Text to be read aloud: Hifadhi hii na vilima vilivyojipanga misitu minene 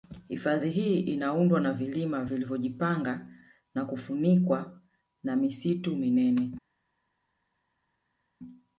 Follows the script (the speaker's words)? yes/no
no